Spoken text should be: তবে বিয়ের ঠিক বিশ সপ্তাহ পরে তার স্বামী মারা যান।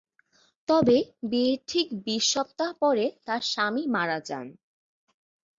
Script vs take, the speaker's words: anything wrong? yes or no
no